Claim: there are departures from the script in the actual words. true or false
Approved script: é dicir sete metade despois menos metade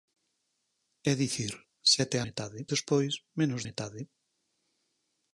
false